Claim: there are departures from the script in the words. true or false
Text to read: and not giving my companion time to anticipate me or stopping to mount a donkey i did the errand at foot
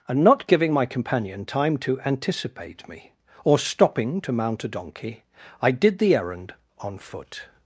true